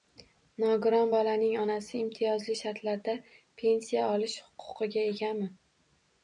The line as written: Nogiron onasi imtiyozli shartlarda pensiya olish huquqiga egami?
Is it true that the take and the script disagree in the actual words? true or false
true